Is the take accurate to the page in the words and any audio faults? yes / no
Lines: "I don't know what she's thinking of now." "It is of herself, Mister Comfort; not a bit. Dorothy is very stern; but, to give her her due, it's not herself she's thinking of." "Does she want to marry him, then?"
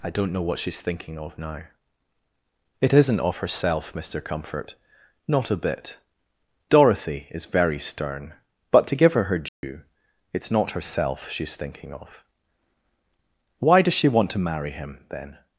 no